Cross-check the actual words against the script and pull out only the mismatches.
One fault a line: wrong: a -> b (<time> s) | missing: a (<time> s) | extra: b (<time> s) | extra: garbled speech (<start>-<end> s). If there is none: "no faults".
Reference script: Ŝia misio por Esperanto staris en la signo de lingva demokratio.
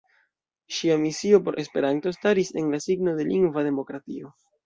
no faults